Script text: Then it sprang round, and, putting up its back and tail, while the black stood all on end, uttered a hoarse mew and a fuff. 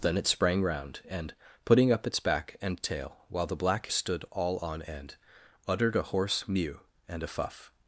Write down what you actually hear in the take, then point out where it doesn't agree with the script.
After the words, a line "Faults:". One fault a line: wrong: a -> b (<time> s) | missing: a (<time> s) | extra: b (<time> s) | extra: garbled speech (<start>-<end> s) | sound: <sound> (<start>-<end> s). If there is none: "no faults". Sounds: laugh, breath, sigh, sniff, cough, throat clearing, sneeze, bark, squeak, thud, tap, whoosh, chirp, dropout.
Then it sprang round, and, putting up its back and tail, while the black stood all on end, uttered a hoarse mew and a fuff.
Faults:
no faults